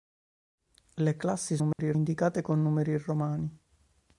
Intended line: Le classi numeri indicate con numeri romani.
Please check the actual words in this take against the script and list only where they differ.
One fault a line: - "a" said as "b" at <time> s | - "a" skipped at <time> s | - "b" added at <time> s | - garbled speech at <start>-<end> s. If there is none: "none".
none